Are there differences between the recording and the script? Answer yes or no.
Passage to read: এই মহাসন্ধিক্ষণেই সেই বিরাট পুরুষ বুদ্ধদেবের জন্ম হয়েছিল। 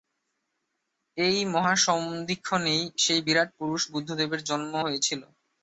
no